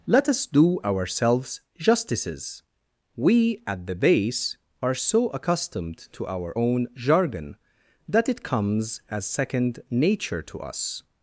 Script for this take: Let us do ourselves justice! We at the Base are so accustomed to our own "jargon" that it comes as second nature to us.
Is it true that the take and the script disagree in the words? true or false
true